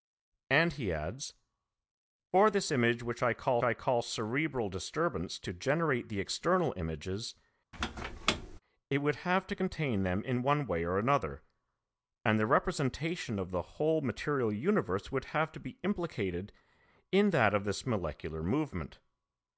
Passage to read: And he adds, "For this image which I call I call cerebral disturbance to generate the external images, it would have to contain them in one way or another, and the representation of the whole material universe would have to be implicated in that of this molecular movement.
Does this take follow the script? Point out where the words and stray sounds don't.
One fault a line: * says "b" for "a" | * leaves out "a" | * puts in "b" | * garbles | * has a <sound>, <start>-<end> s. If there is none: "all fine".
* has a squeak, 7.7-8.6 s